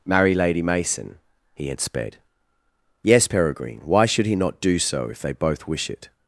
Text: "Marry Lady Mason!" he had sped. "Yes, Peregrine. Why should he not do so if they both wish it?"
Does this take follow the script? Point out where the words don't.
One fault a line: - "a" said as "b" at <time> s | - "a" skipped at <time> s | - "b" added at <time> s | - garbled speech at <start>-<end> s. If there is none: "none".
none